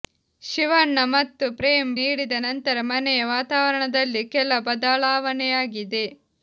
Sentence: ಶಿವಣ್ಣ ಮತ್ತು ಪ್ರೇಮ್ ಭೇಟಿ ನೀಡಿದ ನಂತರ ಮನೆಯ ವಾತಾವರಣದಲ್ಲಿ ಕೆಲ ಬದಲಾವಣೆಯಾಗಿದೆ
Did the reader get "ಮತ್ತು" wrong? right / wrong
right